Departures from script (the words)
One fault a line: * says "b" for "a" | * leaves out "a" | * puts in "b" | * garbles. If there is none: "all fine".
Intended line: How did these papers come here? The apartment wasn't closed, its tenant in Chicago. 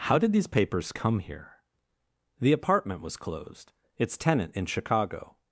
* says "was" for "wasn't"